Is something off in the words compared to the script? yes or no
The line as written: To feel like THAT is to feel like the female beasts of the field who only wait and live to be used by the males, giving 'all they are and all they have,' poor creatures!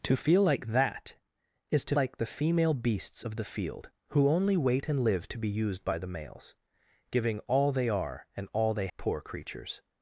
yes